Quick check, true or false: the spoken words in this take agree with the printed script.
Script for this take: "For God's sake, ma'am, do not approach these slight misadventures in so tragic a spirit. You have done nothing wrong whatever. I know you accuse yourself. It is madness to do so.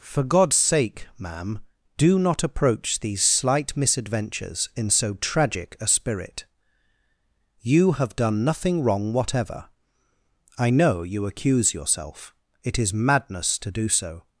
true